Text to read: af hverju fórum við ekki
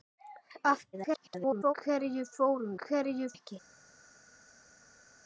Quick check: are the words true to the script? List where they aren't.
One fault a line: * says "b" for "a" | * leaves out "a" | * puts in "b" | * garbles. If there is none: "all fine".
* garbles
* says "hverju" for "við"